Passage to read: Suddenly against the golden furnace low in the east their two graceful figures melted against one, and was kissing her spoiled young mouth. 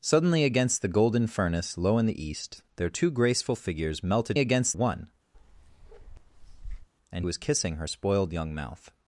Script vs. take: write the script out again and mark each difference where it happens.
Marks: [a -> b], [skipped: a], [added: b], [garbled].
Suddenly against the golden furnace low in the east their two graceful figures melted against one, and was kissing her spoiled young mouth.